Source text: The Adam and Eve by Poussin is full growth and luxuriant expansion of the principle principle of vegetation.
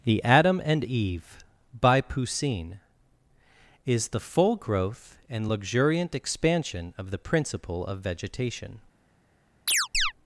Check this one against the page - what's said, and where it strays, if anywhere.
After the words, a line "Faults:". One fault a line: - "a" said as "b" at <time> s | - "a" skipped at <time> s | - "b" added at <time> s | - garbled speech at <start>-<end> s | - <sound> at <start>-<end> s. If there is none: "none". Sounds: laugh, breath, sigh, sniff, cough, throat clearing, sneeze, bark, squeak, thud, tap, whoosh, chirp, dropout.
The Adam and Eve by Poussin is the full growth and luxuriant expansion of the principle of vegetation.
Faults:
- "the" added at 4.1 s
- "principle" skipped at 7.8 s
- chirp at 9.7-10.1 s